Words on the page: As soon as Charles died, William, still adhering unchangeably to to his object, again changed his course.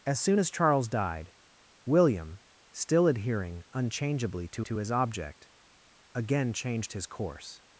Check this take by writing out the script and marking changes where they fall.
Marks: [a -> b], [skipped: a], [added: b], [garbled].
As soon as Charles died, William, still adhering unchangeably to to his object, again changed his course.